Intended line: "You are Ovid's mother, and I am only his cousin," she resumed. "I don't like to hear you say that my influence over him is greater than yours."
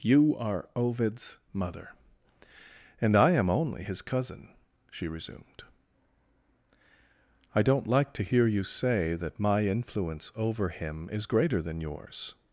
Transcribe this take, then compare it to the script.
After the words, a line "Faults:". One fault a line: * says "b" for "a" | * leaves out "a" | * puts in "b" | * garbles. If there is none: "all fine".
"You are Ovid's mother, and I am only his cousin," she resumed. "I don't like to hear you say that my influence over him is greater than yours."
Faults:
all fine